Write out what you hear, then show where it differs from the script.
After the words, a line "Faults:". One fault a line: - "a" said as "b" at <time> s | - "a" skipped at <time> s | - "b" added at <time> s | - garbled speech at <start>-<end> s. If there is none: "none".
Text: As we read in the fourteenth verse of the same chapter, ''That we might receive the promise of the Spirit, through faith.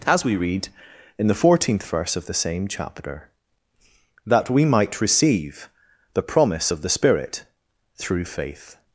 As we read in the fourteenth verse of the same chapter, ''That we might receive the promise of the Spirit, through faith.
Faults:
none